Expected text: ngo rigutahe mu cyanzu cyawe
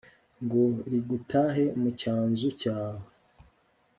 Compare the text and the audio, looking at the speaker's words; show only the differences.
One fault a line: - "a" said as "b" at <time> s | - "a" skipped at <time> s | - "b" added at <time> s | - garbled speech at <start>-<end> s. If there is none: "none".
none